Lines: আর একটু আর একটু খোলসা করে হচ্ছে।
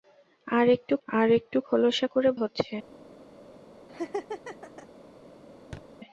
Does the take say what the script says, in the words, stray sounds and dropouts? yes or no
no